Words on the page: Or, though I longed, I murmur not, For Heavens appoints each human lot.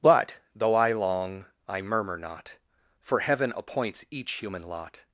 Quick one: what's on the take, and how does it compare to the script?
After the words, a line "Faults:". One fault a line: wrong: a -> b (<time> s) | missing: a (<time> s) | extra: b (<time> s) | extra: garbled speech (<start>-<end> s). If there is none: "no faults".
But, though I long, I murmur not, For Heaven appoints each human lot.
Faults:
wrong: Or -> But (0.0 s)
wrong: longed -> long (0.9 s)
wrong: Heavens -> Heaven (3.2 s)